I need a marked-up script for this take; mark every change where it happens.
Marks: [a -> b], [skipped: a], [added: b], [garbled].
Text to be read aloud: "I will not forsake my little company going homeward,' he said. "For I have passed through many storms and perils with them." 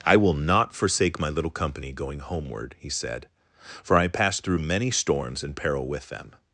"I will not forsake my little company going homeward,' he said. "For I [skipped: have] passed through many storms and [perils -> peril] with them."